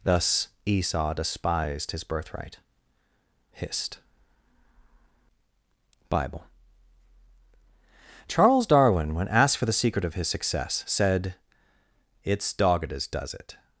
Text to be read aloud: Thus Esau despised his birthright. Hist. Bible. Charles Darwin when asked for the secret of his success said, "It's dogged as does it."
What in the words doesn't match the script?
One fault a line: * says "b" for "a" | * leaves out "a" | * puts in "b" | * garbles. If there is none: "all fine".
all fine